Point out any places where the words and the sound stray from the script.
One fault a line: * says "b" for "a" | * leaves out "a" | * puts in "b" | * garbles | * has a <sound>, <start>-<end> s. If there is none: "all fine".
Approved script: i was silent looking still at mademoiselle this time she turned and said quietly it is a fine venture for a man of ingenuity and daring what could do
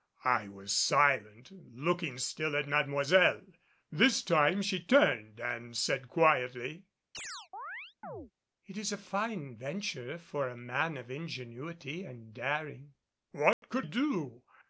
* has a chirp, 7.1-8.3 s
* has a dropout, 13.5-13.6 s